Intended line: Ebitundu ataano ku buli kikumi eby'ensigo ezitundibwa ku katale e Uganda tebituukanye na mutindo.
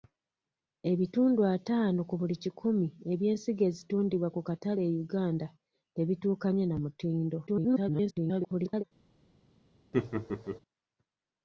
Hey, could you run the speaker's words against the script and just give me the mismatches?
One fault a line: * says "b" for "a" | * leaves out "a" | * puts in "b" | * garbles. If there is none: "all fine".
* garbles